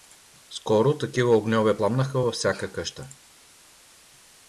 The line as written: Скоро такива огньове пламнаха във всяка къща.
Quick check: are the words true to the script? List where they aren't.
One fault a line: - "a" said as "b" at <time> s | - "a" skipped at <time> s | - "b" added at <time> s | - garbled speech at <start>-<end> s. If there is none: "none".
none